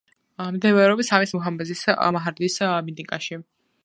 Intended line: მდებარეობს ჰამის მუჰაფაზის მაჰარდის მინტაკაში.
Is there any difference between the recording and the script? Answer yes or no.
no